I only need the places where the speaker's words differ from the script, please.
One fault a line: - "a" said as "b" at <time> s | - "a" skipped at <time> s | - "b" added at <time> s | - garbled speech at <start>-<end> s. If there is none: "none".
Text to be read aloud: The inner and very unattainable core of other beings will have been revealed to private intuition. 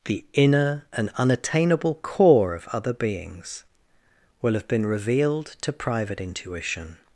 - "very" skipped at 1.1 s